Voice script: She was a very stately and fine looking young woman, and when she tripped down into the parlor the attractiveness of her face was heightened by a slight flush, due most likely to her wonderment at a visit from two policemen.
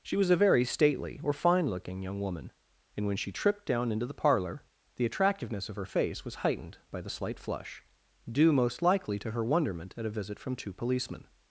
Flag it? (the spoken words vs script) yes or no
yes